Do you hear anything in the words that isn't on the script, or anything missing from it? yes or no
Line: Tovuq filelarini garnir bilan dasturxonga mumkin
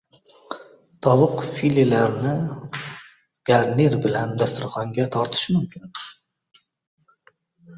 yes